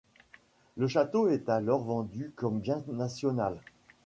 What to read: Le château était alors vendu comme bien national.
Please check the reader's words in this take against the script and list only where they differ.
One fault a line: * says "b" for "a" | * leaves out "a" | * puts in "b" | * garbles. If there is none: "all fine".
* says "est" for "était"